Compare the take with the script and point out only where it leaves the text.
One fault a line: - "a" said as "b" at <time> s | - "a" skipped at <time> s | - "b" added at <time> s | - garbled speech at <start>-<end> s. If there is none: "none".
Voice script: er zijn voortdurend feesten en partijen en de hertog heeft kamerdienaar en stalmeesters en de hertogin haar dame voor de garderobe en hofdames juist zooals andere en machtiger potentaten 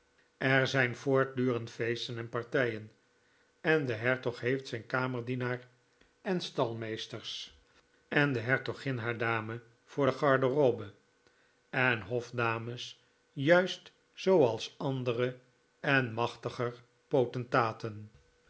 - "zijn" added at 4.7 s